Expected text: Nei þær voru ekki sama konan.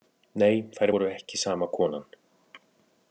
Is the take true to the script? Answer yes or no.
yes